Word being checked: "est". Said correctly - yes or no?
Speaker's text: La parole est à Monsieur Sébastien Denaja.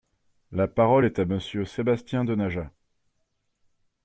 yes